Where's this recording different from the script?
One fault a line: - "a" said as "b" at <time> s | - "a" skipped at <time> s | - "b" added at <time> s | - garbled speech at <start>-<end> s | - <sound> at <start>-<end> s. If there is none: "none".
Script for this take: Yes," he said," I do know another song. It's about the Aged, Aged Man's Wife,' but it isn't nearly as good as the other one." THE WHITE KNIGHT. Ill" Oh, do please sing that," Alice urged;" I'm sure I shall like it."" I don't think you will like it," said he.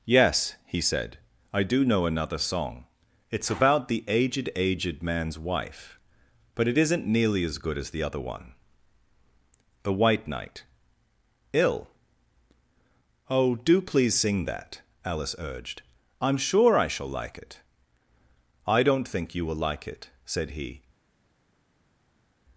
none